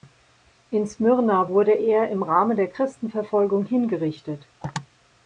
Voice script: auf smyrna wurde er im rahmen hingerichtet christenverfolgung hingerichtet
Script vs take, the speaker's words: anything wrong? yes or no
yes